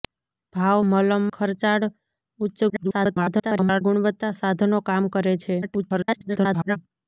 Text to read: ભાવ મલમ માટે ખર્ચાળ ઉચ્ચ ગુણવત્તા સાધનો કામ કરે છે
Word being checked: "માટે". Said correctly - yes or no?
no